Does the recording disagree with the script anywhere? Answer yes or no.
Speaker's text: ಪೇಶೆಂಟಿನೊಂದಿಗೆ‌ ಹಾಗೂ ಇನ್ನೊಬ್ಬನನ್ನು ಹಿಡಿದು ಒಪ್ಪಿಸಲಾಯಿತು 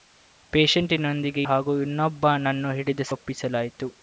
no